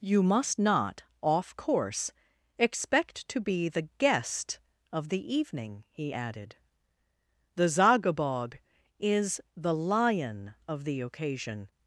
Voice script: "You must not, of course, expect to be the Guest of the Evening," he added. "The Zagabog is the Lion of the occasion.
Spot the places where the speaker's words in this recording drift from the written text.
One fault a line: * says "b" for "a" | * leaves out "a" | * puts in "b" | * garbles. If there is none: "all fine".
* says "off" for "of"